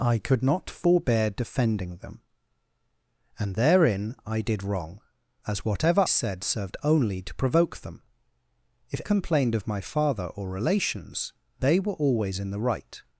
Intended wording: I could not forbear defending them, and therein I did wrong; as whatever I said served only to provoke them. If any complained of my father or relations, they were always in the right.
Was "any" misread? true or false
true